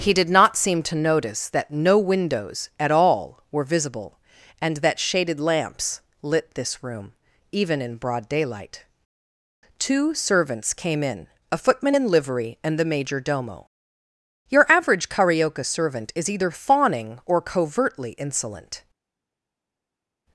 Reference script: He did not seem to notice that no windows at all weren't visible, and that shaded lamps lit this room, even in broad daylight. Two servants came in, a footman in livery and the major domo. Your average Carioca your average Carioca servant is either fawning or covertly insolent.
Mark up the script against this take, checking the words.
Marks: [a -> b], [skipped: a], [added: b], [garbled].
He did not seem to notice that no windows at all [weren't -> were] visible, and that shaded lamps lit this room, even in broad daylight. Two servants came in, a footman in livery and the major domo. Your average Carioca [skipped: your average Carioca] servant is either fawning or covertly insolent.